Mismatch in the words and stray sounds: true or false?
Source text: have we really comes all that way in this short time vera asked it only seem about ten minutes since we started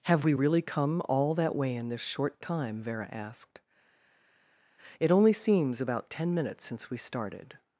true